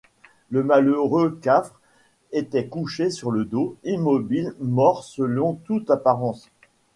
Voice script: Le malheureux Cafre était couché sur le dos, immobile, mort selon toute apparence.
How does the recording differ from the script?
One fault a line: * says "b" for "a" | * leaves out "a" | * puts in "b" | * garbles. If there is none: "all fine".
all fine